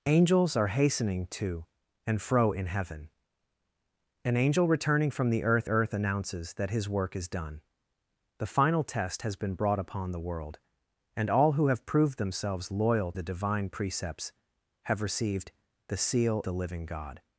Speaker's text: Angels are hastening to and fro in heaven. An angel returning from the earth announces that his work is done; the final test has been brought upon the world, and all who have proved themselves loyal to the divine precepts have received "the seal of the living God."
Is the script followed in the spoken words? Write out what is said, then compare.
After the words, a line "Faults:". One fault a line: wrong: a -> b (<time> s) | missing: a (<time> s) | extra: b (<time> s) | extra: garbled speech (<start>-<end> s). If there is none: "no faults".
Angels are hastening to and fro in heaven. An angel returning from the earth earth announces that his work is done; the final test has been brought upon the world, and all who have proved themselves loyal the divine precepts have received "the seal the living God."
Faults:
extra: earth (5.7 s)
missing: to (13.1 s)
missing: of (16.4 s)